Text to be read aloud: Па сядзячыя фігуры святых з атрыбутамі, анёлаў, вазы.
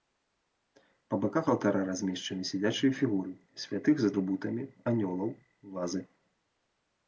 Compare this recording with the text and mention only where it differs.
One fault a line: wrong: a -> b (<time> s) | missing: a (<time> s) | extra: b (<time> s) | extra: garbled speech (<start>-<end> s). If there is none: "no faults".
extra: баках алтара размешчаны (1.2 s)